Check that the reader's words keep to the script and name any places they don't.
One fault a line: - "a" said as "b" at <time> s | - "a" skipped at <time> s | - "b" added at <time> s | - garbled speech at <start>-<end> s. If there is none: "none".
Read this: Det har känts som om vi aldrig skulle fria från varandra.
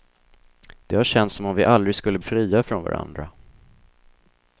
none